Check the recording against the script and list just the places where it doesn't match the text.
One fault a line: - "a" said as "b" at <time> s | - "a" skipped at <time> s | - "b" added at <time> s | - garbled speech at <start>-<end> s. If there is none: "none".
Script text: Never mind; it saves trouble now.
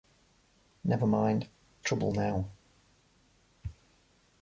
- "it saves" skipped at 1.5 s